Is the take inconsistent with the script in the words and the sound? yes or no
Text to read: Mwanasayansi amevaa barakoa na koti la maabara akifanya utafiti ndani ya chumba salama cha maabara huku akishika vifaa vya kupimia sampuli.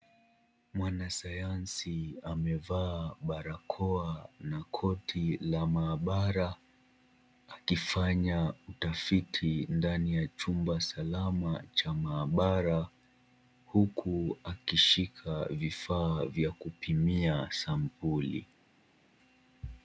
no